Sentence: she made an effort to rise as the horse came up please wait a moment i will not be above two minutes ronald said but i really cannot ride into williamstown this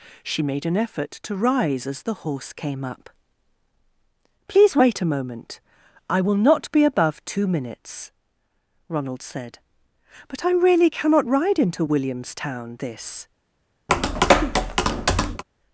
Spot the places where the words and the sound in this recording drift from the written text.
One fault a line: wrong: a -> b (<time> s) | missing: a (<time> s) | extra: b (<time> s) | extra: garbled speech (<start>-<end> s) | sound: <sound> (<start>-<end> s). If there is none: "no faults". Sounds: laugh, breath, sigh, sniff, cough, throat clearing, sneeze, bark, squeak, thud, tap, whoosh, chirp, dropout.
sound: tap (13.9-15.4 s)